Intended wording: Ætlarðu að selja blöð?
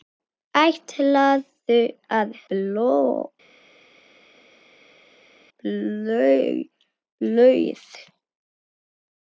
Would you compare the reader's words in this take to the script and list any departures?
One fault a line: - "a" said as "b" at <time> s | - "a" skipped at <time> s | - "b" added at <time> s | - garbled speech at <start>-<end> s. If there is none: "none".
- "selja" skipped at 2.3 s